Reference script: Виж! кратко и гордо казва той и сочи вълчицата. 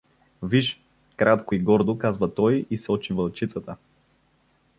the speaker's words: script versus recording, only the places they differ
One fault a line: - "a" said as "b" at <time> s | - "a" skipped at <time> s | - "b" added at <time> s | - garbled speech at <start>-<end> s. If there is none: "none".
none